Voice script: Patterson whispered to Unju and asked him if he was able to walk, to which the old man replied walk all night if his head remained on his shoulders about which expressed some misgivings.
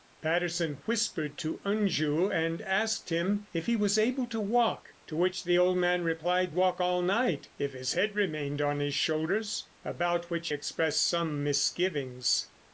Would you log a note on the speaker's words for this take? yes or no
no